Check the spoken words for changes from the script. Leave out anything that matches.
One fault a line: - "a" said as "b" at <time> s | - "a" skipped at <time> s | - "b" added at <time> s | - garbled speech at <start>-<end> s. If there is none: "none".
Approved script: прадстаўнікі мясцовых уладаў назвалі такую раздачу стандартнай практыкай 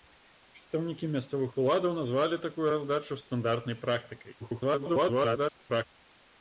- garbled speech at 4.4-5.8 s